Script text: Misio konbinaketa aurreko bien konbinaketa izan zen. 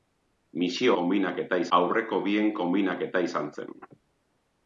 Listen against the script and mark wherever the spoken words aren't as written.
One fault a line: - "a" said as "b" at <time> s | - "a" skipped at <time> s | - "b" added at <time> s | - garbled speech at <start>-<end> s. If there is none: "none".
none